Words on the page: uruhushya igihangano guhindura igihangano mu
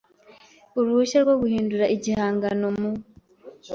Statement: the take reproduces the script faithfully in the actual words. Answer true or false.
false